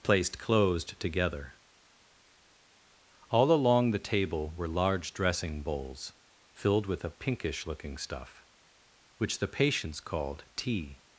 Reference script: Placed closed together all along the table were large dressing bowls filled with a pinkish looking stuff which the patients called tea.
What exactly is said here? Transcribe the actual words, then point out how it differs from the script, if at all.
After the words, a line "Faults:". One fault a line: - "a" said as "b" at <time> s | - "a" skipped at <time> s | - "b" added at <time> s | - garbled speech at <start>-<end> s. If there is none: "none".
Placed closed together all along the table were large dressing bowls filled with a pinkish looking stuff which the patients called tea.
Faults:
none